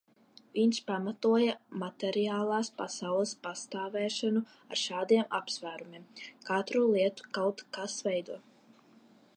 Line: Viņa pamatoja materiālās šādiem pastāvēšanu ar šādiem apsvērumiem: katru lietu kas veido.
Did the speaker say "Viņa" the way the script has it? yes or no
no